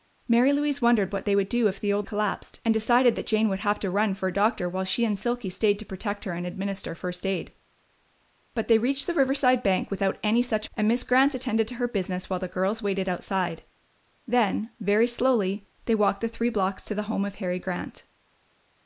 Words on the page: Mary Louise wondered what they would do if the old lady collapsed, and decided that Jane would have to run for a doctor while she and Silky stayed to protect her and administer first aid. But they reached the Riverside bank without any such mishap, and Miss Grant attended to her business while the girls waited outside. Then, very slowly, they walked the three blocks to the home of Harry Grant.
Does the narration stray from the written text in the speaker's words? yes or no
yes